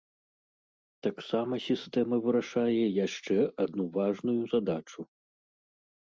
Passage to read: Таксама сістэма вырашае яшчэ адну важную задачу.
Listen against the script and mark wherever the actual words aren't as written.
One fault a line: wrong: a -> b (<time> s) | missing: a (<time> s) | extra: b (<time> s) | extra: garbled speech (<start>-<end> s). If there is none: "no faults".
no faults